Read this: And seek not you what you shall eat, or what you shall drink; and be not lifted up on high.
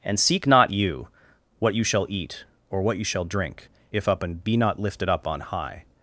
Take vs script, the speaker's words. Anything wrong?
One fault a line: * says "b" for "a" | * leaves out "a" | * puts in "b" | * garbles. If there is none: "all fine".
* puts in "if up"